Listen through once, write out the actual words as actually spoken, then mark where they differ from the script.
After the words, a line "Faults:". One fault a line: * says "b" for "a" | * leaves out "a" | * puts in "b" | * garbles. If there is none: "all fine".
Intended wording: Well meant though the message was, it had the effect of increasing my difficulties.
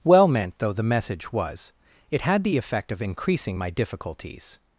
Well meant though the message was, it had the effect of increasing my difficulties.
Faults:
all fine